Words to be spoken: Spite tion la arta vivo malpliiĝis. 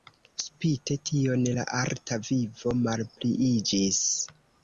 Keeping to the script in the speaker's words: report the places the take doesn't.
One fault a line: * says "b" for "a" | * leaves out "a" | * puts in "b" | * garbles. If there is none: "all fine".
all fine